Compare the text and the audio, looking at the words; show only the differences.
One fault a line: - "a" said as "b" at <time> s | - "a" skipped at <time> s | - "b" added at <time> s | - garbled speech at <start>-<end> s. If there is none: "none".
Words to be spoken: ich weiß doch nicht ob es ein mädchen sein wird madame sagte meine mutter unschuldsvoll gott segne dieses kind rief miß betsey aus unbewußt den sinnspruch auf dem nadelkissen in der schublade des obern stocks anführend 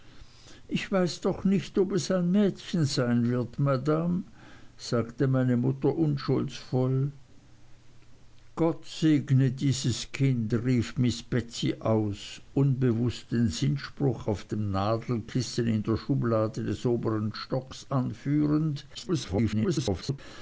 - garbled speech at 18.9-20.2 s